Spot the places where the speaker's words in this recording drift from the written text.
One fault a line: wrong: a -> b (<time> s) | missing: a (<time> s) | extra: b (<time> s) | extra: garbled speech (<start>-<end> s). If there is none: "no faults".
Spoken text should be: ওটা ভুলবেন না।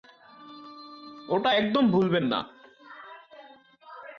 extra: একদম (1.5 s)